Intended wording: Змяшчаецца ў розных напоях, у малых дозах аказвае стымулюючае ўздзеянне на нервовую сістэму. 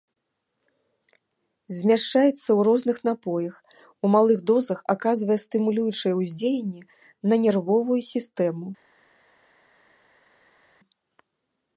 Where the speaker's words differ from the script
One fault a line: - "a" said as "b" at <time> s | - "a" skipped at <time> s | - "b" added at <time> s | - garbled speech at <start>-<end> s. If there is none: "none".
none